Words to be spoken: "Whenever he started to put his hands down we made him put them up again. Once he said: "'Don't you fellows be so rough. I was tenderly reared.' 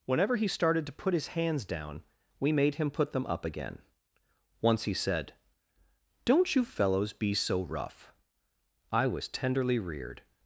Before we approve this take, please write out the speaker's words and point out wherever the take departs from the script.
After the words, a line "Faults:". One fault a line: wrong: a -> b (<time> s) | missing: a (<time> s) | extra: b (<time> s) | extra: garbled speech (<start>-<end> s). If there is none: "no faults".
"Whenever he started to put his hands down we made him put them up again. Once he said: "'Don't you fellows be so rough. I was tenderly reared.'
Faults:
no faults